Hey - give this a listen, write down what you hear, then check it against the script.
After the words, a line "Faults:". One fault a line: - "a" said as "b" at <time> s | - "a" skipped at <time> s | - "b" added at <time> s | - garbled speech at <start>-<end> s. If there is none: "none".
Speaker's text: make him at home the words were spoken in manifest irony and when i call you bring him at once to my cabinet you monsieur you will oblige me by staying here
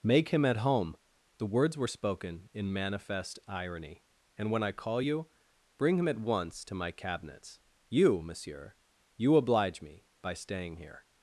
make him at home the words were spoken in manifest irony and when i call you bring him at once to my cabinets you monsieur you oblige me by staying here
Faults:
- "cabinet" said as "cabinets" at 6.9 s
- "will" skipped at 9.3 s